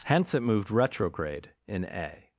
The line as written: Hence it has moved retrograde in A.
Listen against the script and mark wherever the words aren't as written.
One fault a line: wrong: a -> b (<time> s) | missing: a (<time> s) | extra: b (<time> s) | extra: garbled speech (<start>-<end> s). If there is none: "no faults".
missing: has (0.4 s)